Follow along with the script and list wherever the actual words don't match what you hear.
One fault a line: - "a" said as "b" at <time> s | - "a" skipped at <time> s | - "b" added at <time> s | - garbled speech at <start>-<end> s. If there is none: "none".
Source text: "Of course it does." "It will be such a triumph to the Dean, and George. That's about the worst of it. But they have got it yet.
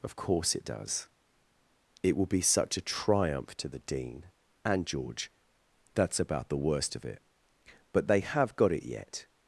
none